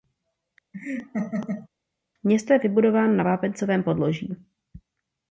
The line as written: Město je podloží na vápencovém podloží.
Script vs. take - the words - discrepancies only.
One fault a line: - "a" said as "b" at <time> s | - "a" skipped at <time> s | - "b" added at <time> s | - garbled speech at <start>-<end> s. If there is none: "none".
- "podloží" said as "vybudováno" at 2.6 s